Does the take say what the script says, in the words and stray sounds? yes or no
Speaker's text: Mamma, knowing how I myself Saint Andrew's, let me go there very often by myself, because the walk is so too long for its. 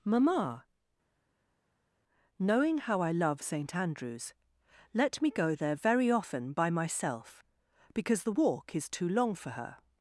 no